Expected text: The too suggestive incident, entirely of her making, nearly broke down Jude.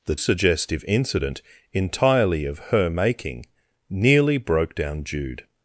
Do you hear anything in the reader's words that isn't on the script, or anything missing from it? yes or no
yes